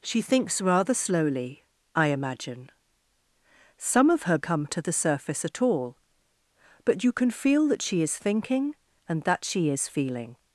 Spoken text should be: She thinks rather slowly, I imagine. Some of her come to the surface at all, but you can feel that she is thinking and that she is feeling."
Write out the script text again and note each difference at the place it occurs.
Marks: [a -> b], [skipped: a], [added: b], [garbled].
She thinks rather slowly, I imagine. Some of her come to the surface at all, but you can feel that she is thinking and that she is feeling."